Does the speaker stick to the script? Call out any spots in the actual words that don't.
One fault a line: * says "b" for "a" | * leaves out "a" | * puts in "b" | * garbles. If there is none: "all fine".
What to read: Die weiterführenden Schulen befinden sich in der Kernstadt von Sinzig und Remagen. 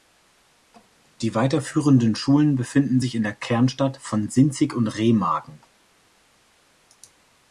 all fine